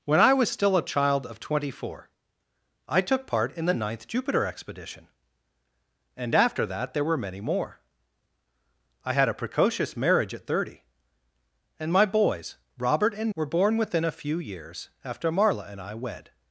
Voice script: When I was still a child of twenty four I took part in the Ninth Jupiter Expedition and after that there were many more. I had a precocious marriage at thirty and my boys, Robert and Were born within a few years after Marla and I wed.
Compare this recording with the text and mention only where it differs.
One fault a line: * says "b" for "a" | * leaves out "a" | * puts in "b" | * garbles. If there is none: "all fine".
all fine